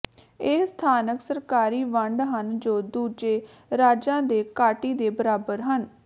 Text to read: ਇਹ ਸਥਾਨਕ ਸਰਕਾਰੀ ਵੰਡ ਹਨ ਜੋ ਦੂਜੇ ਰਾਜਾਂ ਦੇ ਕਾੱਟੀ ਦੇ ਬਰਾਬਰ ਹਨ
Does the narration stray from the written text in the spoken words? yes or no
no